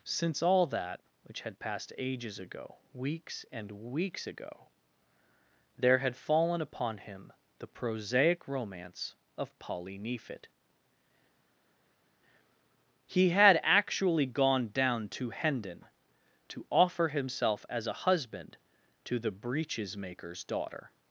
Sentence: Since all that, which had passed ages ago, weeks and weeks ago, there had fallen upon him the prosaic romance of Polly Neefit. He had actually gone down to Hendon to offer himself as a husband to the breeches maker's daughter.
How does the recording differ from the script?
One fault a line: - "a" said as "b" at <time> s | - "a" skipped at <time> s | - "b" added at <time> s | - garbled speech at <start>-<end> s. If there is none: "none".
none